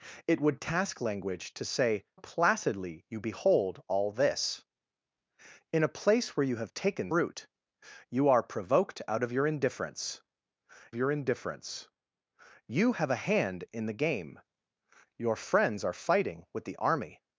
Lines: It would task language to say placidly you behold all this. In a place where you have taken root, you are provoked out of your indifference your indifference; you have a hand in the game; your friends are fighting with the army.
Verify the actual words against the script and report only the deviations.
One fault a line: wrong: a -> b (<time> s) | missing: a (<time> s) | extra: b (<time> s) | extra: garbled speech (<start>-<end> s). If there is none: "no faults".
no faults